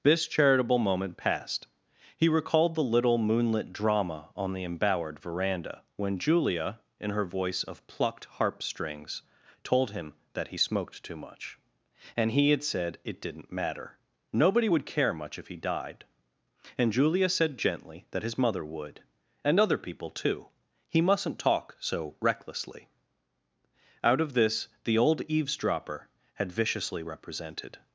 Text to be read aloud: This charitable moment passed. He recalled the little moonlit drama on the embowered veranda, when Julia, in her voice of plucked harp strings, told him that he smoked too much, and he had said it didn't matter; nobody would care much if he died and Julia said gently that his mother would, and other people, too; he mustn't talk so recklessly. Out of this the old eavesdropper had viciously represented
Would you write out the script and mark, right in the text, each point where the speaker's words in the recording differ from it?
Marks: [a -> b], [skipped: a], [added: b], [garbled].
This charitable moment passed. He recalled the little moonlit drama on the embowered veranda, when Julia, in her voice of plucked harp strings, told him that he smoked too much, and he had said it didn't matter; nobody would care much if he died and Julia said gently that his mother would, and other people, too; he mustn't talk so recklessly. Out of this the old eavesdropper had viciously represented